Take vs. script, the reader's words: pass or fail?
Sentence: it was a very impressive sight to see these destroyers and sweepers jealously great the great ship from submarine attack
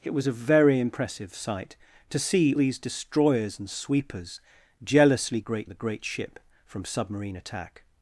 pass